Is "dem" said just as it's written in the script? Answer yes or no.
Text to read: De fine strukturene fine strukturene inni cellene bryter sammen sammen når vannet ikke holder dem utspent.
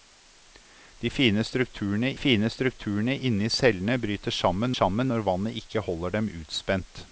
yes